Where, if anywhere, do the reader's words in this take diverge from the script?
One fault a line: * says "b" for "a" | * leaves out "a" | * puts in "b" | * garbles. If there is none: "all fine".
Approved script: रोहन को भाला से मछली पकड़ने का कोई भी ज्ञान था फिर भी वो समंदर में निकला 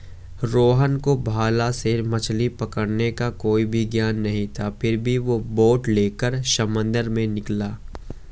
* puts in "नहीं"
* puts in "बोट लेकर"